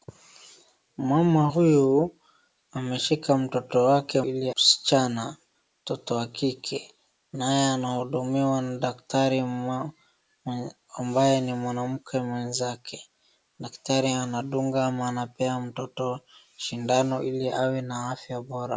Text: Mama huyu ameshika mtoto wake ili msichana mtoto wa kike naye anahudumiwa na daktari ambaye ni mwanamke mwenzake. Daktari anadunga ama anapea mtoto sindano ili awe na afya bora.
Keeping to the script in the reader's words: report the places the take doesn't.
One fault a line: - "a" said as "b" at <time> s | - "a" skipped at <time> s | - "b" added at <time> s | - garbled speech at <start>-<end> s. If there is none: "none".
none